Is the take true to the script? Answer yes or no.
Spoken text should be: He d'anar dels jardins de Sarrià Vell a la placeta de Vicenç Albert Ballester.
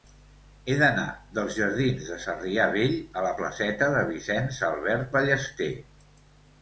yes